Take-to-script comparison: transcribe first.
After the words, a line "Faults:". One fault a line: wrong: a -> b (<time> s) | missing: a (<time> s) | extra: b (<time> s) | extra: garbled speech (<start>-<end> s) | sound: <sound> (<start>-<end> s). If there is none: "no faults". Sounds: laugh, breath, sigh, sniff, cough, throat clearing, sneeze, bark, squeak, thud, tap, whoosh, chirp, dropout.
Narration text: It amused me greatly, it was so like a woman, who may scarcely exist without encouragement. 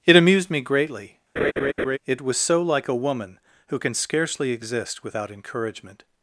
It amused me greatly, it was so like a woman, who can scarcely exist without encouragement.
Faults:
sound: laugh (1.4-2.0 s)
wrong: may -> can (3.8 s)